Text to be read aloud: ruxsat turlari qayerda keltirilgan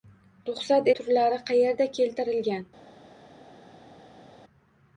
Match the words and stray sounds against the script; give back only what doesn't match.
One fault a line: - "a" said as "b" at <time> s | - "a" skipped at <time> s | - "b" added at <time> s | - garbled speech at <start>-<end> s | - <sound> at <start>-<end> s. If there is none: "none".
none